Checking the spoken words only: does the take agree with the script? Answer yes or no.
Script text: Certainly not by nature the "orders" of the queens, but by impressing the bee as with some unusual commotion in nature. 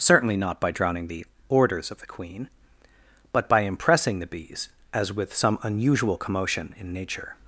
no